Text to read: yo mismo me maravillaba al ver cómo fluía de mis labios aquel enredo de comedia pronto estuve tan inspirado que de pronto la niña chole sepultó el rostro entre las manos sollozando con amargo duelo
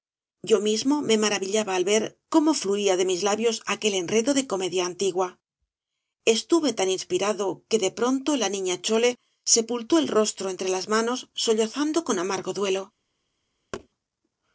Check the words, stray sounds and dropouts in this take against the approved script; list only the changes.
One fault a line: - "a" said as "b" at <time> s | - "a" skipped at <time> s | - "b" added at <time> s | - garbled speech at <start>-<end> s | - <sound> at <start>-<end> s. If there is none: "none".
- "pronto" said as "antigua" at 4.9 s
- thud at 13.7-13.9 s